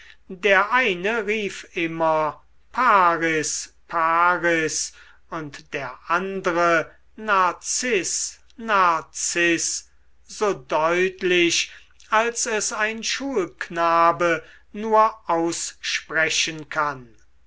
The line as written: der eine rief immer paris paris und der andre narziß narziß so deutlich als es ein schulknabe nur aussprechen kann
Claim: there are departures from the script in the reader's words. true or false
false